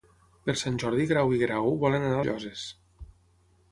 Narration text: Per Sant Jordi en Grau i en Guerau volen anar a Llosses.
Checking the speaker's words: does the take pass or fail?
pass